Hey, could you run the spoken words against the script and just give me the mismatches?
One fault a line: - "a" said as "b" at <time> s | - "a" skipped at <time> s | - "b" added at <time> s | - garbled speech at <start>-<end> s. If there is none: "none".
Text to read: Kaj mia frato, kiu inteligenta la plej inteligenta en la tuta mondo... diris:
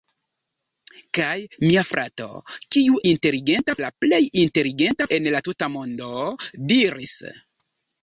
none